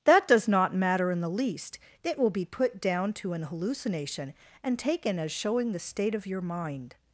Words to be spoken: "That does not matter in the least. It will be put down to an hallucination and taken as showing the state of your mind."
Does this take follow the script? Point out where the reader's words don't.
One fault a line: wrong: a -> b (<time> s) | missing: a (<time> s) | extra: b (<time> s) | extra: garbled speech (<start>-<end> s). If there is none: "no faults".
no faults